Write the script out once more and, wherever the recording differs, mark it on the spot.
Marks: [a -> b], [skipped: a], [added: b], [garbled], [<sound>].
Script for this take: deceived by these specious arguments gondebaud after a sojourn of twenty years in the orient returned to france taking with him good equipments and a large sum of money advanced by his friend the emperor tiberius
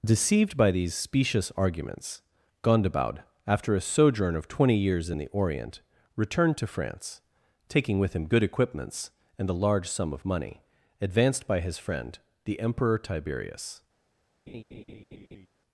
deceived by these specious arguments gondebaud after a sojourn of twenty years in the orient returned to france taking with him good equipments and a large sum of money advanced by his friend the emperor tiberius [laugh]